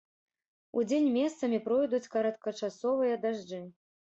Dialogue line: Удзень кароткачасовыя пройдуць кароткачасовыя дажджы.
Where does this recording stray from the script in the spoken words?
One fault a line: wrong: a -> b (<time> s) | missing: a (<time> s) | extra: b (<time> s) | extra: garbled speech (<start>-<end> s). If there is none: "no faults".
wrong: кароткачасовыя -> месцамі (1.2 s)